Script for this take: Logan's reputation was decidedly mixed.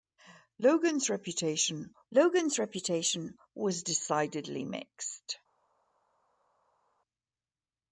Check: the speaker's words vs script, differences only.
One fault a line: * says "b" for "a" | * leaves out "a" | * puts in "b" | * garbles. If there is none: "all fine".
* puts in "logan's reputation"